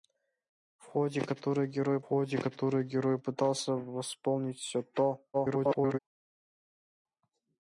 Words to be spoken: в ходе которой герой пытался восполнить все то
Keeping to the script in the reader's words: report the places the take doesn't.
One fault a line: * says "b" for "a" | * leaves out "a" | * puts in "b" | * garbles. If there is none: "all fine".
* puts in "ходе которой герой"
* garbles